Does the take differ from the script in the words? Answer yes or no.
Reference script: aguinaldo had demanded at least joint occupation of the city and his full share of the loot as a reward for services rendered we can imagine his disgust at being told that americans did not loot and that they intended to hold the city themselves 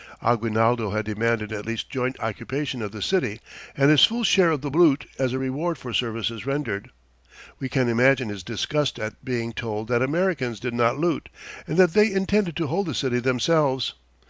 no